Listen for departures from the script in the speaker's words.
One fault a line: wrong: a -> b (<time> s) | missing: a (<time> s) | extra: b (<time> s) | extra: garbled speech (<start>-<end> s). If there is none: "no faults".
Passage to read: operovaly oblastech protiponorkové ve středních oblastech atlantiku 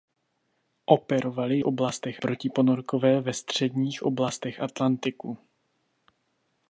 no faults